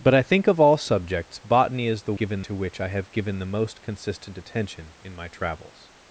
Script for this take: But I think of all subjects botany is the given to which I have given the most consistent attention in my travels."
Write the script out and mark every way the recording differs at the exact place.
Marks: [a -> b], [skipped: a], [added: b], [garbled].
But I think of all subjects botany is the given to which I have given the most consistent attention in my travels."